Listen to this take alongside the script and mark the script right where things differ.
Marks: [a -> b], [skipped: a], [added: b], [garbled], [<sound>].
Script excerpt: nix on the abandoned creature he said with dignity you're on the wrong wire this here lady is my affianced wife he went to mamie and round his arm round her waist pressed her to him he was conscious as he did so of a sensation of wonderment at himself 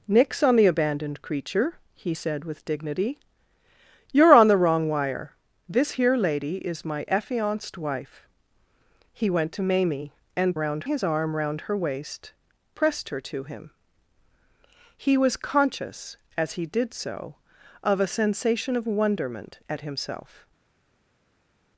nix on the abandoned creature he said with dignity you're on the wrong wire this here lady is my affianced wife he went to mamie and round his arm round her waist pressed her to him he was conscious as he did so of a sensation of wonderment at himself